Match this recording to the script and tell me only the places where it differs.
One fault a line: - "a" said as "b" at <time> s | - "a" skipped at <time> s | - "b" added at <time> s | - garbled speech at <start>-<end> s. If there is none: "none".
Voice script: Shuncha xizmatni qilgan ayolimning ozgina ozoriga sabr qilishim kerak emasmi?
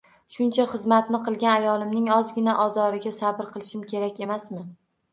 none